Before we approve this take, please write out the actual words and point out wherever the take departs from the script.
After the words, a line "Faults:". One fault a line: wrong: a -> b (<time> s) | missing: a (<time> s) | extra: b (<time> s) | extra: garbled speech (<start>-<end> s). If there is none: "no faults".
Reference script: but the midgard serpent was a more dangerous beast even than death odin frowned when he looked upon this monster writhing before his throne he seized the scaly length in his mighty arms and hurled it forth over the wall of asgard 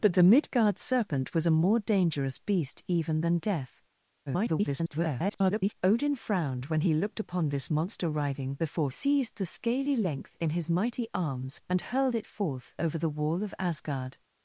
but the midgard serpent was a more dangerous beast even than death [garbled] odin frowned when he looked upon this monster writhing before seized the scaly length in his mighty arms and hurled it forth over the wall of asgard
Faults:
extra: garbled speech (4.3-5.7 s)
missing: his throne he (8.9 s)